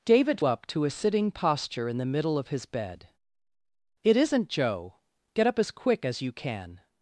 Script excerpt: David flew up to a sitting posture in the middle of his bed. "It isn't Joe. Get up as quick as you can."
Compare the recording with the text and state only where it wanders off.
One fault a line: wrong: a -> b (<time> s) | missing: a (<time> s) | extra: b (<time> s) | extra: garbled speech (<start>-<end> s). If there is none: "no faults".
missing: flew (0.4 s)